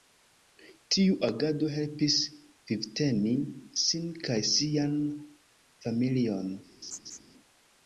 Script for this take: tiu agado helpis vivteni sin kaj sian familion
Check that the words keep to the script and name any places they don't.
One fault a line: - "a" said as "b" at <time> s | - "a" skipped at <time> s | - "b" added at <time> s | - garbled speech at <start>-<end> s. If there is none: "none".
none